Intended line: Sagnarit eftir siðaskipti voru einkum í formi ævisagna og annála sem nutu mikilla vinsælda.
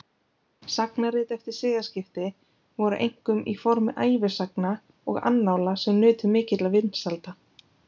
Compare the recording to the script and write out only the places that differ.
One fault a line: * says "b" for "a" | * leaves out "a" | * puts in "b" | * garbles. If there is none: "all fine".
all fine